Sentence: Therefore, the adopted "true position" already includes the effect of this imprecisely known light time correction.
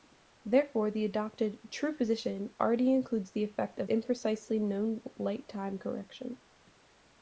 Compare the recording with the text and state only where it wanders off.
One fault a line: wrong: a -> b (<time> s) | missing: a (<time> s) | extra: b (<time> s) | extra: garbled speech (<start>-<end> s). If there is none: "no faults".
missing: this (3.9 s)